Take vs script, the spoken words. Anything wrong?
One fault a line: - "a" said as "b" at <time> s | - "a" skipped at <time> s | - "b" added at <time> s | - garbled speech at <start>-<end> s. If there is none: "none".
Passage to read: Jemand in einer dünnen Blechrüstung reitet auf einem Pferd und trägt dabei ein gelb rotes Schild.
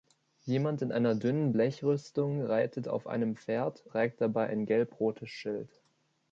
- "und" skipped at 3.8 s